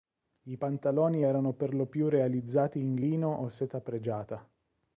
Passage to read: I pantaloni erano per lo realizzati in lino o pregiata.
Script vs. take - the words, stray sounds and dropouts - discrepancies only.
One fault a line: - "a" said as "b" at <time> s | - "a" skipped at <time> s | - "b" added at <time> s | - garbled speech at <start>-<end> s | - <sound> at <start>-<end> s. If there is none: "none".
- "più" added at 1.9 s
- "seta" added at 3.5 s